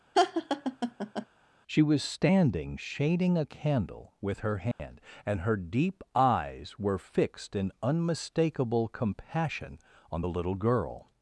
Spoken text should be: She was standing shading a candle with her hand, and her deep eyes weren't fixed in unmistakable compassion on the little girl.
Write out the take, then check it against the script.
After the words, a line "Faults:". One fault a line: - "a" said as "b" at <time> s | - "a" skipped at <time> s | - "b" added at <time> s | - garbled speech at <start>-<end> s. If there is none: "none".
She was standing shading a candle with her hand, and her deep eyes were fixed in unmistakable compassion on the little girl.
Faults:
- "weren't" said as "were" at 6.8 s